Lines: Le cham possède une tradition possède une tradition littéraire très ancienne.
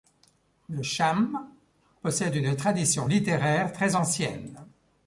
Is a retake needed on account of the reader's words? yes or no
yes